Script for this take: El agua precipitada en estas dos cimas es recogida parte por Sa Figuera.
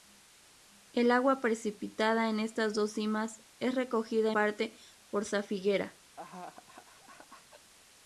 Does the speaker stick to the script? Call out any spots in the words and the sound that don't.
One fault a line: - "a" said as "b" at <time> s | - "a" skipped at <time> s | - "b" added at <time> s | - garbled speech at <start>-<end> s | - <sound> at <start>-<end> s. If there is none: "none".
- laugh at 6.2-7.7 s